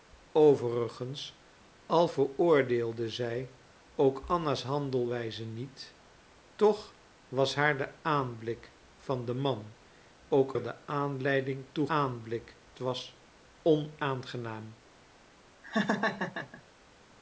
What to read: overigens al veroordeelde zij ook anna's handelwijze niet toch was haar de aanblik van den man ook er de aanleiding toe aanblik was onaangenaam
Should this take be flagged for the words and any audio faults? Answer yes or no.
yes